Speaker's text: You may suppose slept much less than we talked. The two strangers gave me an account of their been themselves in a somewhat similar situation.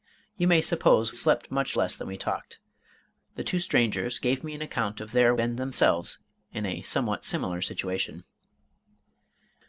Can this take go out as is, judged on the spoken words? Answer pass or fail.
pass